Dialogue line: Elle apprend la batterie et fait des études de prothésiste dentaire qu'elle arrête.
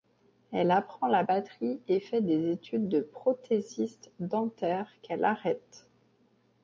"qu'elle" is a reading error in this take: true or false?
false